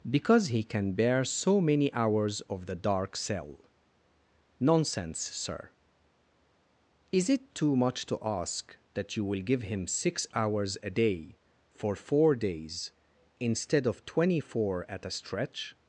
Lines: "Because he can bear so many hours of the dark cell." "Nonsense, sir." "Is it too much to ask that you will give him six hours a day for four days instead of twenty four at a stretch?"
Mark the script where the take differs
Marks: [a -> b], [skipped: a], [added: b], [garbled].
"Because he can bear so many hours of the dark cell." "Nonsense, sir." "Is it too much to ask that you will give him six hours a day for four days instead of twenty four at a stretch?"